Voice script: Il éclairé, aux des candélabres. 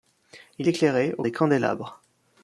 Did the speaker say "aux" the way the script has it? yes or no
yes